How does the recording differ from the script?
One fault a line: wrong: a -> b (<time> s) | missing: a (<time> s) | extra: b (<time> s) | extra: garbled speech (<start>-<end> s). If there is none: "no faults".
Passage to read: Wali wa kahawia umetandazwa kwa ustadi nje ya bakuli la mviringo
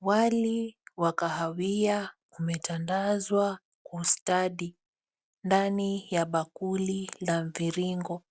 wrong: nje -> ndani (5.4 s)